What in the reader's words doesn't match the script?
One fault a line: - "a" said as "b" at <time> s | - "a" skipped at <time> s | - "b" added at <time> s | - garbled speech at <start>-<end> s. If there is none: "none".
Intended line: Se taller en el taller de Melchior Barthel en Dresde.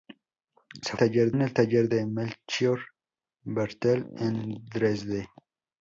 none